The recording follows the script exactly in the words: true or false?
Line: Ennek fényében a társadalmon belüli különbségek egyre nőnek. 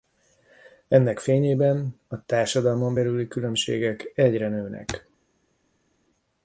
true